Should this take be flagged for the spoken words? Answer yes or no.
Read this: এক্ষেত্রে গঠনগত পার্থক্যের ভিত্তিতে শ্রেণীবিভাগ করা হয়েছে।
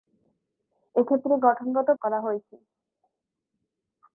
yes